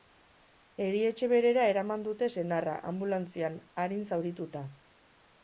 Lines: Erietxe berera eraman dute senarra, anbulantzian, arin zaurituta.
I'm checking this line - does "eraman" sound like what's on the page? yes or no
yes